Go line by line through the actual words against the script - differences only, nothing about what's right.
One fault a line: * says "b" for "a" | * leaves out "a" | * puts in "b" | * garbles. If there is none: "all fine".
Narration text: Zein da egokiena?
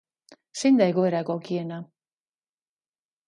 * puts in "egoera"